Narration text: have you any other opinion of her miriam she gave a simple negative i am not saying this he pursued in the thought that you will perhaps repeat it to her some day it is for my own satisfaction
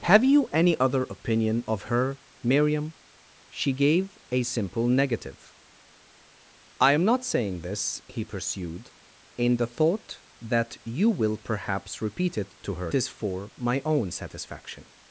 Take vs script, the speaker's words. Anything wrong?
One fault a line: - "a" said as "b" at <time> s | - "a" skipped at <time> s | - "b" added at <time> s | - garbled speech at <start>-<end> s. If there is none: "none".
- "some day it" skipped at 12.9 s